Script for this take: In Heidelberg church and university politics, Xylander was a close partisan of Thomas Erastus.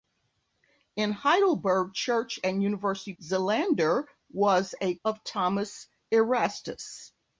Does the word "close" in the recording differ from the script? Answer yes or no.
yes